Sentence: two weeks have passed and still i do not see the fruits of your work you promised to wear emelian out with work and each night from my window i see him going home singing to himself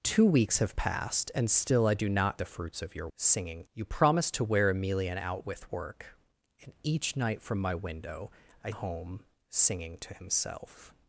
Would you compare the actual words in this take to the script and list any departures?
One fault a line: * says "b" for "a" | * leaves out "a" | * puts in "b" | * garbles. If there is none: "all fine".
* leaves out "see"
* says "singing" for "work"
* leaves out "see him going"